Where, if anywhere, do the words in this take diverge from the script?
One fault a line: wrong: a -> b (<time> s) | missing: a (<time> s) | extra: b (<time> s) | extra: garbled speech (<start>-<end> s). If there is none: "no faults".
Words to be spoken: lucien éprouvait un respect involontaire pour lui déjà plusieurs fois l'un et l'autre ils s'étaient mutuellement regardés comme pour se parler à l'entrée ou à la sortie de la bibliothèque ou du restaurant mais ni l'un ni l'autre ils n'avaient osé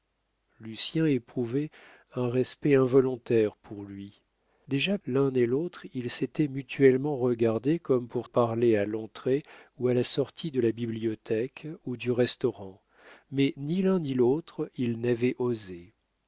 missing: plusieurs fois (5.0 s)
missing: se (8.3 s)